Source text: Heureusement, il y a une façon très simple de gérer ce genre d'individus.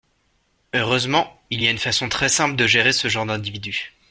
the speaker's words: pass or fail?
pass